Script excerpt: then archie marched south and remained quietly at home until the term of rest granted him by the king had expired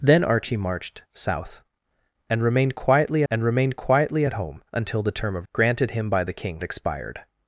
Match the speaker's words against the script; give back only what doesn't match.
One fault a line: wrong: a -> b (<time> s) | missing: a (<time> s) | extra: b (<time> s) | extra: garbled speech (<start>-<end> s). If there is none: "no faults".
extra: and remained quietly (3.3 s)
missing: rest (5.5 s)
missing: had (6.6 s)